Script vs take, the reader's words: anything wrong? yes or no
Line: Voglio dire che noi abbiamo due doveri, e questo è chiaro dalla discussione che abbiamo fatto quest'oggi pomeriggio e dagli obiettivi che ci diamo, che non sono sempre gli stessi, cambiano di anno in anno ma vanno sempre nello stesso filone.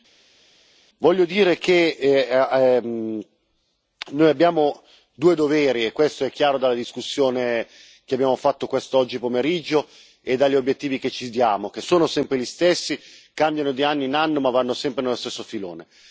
yes